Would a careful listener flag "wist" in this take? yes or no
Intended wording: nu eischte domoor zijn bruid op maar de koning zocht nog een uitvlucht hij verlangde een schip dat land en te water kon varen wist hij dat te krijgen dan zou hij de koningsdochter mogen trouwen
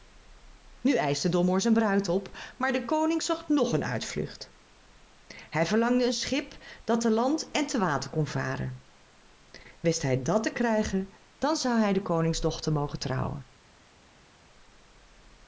no